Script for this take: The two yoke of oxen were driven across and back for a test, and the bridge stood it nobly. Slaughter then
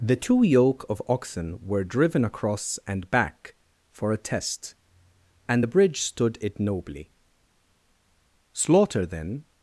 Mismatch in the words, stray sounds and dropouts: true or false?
false